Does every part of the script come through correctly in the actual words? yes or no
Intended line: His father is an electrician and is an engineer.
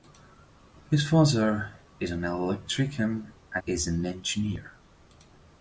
yes